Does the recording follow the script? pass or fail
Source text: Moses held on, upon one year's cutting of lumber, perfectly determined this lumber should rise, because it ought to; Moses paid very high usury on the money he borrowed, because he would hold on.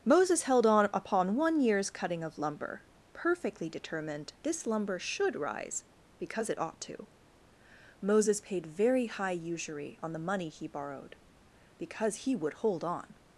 pass